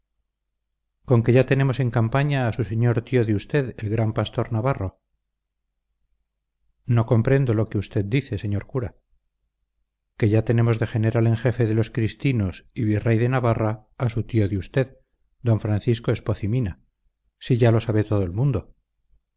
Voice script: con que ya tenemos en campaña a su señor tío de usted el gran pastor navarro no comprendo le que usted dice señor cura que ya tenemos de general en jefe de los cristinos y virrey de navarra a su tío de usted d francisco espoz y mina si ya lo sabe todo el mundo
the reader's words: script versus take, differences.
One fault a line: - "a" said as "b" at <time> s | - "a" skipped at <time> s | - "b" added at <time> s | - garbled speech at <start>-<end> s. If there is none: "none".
- "le" said as "lo" at 7.5 s